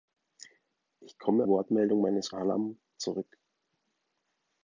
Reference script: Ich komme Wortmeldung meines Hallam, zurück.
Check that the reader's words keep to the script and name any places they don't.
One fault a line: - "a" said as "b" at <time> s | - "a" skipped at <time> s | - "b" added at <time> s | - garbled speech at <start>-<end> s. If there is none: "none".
none